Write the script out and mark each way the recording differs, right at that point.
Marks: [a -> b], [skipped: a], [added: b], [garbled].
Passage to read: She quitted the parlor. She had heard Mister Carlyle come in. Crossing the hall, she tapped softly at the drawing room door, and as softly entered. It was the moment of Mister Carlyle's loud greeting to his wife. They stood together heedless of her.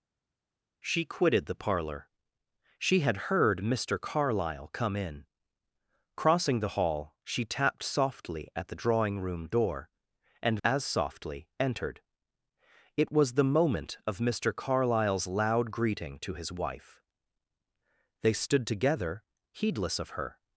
She quitted the parlor. She had heard Mister Carlyle come in. Crossing the hall, she tapped softly at the drawing room door, and as softly entered. It was the moment of Mister Carlyle's loud greeting to his wife. They stood together heedless of her.